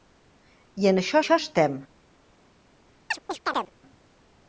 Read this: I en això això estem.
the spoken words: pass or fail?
pass